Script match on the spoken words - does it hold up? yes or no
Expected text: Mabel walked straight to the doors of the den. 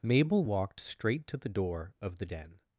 no